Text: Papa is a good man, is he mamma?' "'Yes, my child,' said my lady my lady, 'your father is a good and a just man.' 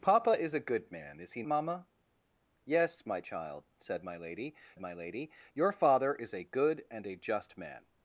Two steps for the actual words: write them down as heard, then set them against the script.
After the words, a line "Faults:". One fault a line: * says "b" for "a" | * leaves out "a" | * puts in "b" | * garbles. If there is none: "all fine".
Papa is a good man, is he mamma?' "'Yes, my child,' said my lady my lady, 'your father is a good and a just man.'
Faults:
all fine